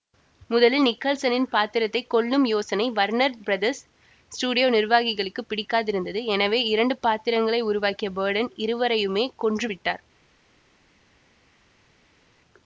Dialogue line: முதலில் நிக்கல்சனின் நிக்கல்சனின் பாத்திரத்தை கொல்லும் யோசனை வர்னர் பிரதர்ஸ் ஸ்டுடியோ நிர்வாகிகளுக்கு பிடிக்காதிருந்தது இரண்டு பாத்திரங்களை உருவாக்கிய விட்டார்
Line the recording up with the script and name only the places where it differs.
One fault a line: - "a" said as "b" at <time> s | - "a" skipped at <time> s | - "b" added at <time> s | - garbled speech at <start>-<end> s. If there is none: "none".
- "நிக்கல்சனின்" skipped at 1.4 s
- "எனவே" added at 6.3 s
- "பர்டன் இருவரையுமே கொன்று" added at 8.1 s